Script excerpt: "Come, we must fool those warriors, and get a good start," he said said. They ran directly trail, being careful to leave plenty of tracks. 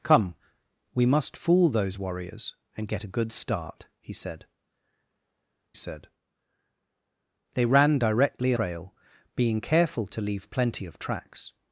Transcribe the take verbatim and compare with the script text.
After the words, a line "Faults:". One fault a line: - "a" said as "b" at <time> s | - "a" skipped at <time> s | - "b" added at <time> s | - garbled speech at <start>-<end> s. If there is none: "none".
"Come, we must fool those warriors, and get a good start," he said said. They ran directly trail, being careful to leave plenty of tracks.
Faults:
none